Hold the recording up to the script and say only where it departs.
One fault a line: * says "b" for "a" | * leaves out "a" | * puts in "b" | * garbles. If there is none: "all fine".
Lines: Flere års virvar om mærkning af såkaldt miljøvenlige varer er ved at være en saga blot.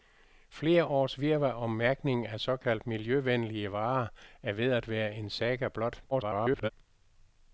* garbles